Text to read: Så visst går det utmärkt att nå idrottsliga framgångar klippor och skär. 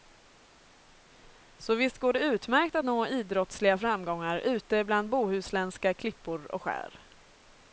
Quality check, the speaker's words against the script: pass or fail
fail